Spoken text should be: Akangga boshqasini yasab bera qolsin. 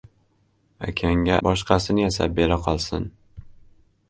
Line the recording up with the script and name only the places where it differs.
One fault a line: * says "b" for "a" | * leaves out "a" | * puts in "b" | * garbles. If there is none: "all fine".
all fine